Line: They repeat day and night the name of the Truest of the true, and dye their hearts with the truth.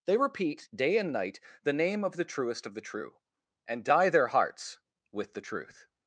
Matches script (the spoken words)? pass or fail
pass